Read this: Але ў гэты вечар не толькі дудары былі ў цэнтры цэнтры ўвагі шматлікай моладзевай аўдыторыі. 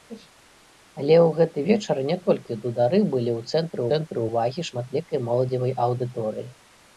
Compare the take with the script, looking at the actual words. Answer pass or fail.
pass